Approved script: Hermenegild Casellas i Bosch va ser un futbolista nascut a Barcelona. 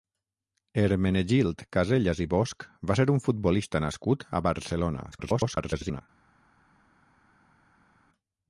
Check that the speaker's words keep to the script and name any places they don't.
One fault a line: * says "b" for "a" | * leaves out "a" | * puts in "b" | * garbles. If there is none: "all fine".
* garbles